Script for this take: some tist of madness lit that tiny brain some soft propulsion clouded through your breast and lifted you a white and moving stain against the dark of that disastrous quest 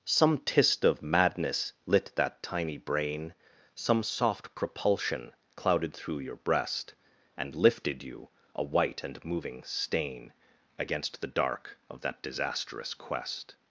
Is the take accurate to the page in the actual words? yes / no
yes